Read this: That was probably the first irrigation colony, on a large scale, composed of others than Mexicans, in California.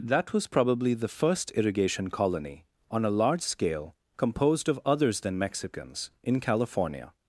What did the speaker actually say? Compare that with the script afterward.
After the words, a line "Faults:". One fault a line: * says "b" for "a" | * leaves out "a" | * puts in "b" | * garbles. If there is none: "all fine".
That was probably the first irrigation colony, on a large scale, composed of others than Mexicans, in California.
Faults:
all fine